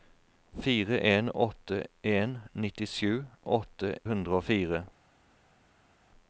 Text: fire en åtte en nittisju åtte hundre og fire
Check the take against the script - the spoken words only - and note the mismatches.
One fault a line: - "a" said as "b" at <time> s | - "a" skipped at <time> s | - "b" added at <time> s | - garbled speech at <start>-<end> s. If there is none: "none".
none